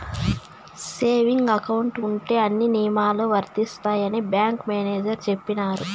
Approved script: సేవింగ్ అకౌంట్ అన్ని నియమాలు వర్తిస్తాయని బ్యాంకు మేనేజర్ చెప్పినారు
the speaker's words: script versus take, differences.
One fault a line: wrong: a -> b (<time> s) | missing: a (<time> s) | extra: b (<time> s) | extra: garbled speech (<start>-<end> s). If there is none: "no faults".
extra: ఉంటే (2.1 s)